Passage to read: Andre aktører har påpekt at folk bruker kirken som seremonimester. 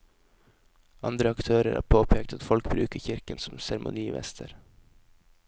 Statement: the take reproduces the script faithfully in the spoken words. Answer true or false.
true